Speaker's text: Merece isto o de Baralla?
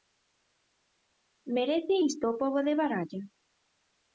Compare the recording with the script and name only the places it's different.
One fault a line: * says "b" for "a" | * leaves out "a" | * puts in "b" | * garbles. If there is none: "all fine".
* puts in "pobo"